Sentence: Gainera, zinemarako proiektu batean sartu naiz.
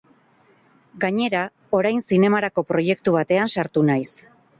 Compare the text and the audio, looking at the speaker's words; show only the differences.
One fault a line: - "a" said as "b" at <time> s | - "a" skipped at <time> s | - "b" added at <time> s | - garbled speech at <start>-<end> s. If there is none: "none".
- "orain" added at 1.8 s